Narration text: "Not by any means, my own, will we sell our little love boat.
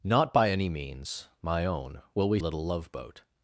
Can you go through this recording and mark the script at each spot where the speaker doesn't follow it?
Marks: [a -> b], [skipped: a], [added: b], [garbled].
"Not by any means, my own, will we [skipped: sell our] little love boat.